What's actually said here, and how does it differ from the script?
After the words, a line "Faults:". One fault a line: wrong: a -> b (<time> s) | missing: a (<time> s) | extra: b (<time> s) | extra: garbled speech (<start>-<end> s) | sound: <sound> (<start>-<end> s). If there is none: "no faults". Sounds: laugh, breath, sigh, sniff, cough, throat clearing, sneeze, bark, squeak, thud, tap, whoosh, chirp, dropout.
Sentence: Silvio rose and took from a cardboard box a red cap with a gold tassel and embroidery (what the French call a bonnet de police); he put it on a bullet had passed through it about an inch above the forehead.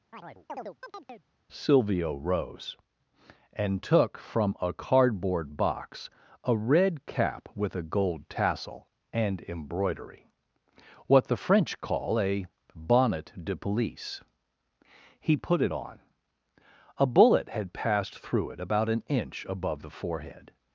Silvio rose and took from a cardboard box a red cap with a gold tassel and embroidery (what the French call a bonnet de police); he put it on a bullet had passed through it about an inch above the forehead.
Faults:
sound: chirp (0.1-1.3 s)